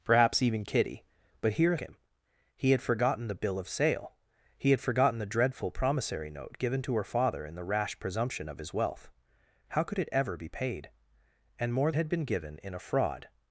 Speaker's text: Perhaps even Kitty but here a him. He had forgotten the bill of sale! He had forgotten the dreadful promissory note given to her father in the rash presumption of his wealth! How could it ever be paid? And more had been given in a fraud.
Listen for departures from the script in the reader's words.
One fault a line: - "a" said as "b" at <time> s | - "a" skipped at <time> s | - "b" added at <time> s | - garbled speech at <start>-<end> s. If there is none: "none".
none